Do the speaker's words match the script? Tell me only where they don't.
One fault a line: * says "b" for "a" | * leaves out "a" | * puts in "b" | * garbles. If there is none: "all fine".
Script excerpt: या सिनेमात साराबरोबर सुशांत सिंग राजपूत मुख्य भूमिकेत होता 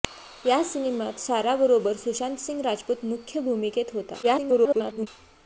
* garbles